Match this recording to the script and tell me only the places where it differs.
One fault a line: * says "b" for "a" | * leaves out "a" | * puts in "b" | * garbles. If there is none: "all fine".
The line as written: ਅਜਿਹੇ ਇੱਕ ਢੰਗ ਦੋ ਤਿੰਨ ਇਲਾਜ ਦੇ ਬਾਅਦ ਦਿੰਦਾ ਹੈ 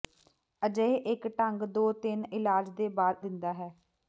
all fine